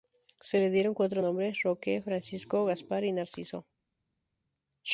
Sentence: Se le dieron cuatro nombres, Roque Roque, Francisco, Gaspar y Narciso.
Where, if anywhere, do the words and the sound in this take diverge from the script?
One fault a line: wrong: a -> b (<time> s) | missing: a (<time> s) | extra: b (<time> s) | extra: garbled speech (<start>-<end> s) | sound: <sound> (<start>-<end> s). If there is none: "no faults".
missing: Roque (2.0 s)